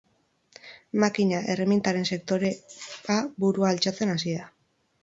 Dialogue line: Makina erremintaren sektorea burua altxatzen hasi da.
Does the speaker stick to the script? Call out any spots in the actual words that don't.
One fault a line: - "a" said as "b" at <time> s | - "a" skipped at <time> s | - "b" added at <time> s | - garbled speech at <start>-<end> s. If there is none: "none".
none